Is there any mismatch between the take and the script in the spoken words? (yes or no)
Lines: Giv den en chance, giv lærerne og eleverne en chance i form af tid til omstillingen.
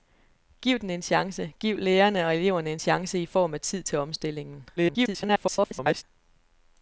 yes